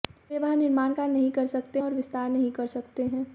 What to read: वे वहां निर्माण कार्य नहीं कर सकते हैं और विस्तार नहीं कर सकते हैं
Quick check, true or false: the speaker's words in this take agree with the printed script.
false